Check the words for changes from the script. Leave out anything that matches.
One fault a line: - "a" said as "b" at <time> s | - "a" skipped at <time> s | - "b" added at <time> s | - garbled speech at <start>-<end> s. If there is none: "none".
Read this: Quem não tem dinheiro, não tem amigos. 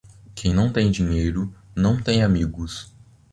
none